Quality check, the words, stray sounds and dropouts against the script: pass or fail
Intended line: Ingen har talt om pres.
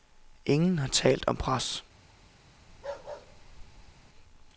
fail